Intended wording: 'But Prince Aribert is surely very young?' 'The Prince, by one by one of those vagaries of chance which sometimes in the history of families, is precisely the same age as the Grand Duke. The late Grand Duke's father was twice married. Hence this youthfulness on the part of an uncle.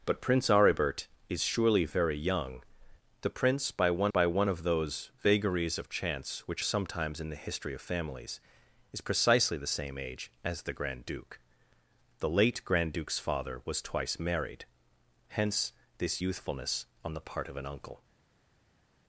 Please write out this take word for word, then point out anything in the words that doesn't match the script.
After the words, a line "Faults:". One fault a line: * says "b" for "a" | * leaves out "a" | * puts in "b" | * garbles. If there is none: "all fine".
'But Prince Aribert is surely very young?' 'The Prince, by one by one of those vagaries of chance which sometimes in the history of families, is precisely the same age as the Grand Duke. The late Grand Duke's father was twice married. Hence this youthfulness on the part of an uncle.
Faults:
all fine